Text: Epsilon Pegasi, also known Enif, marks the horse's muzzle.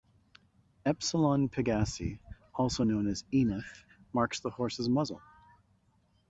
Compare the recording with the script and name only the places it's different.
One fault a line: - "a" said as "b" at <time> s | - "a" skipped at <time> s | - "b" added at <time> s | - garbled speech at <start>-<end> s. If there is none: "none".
- "as" added at 3.1 s